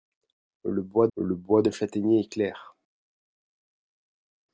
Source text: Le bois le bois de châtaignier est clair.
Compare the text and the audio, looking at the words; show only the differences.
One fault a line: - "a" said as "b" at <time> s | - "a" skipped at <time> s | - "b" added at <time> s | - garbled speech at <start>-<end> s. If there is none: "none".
none